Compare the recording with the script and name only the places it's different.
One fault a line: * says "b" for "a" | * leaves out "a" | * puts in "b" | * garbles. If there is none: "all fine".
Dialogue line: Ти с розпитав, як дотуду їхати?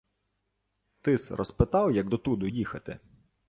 all fine